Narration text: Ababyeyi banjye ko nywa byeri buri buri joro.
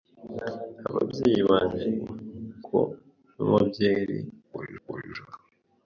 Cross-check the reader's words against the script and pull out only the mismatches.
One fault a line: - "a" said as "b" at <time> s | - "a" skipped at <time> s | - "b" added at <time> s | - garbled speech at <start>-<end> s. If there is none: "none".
none